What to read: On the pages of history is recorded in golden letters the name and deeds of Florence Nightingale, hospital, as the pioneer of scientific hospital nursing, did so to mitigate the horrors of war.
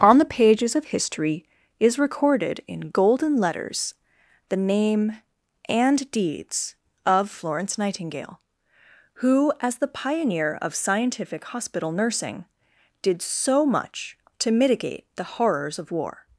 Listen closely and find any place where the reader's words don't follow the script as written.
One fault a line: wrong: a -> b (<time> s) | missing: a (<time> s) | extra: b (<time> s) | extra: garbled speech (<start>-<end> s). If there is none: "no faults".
wrong: hospital -> who (9.2 s)
extra: much (13.7 s)